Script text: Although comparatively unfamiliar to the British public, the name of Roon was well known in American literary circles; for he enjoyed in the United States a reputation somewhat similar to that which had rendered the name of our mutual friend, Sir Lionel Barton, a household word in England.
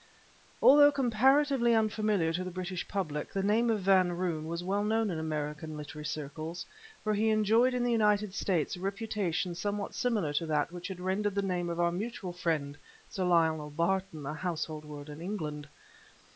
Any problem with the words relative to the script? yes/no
yes